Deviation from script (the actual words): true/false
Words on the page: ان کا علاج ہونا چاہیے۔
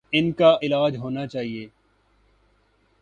false